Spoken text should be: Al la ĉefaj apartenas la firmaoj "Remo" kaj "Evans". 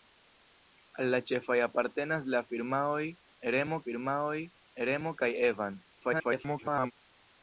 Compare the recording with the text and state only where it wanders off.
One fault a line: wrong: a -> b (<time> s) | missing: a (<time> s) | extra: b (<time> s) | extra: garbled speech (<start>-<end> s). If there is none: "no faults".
extra: firmaoj Remo (3.8 s)
extra: garbled speech (6.0-6.9 s)